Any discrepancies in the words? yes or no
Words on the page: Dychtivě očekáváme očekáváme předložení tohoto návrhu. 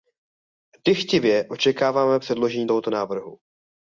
yes